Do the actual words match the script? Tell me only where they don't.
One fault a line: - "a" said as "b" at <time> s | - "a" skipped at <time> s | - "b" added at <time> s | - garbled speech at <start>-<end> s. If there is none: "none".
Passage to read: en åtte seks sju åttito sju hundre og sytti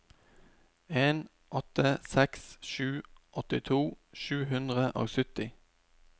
none